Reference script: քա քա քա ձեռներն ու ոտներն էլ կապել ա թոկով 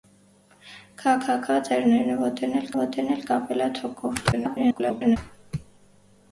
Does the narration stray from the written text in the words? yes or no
yes